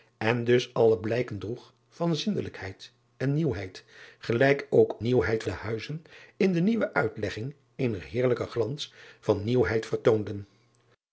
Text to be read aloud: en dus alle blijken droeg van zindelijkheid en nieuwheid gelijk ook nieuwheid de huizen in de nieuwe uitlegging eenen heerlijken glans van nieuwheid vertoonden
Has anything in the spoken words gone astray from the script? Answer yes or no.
no